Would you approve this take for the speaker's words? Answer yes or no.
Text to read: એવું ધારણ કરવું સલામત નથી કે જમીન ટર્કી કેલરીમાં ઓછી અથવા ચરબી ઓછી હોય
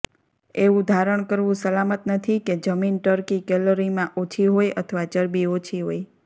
no